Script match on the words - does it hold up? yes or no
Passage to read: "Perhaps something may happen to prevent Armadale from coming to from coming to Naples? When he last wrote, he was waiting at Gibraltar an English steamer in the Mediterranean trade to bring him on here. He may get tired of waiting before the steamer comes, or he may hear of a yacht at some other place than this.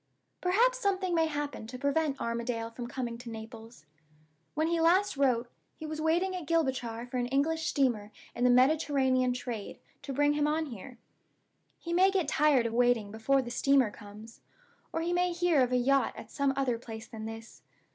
no